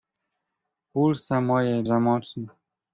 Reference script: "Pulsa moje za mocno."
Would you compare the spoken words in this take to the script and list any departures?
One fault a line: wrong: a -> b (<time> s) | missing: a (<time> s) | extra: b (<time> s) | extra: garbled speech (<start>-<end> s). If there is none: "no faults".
no faults